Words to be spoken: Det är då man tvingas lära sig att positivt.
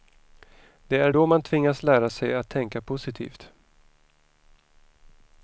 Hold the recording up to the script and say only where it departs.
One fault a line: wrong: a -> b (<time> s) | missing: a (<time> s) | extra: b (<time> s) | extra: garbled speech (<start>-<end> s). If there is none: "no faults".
extra: tänka (2.5 s)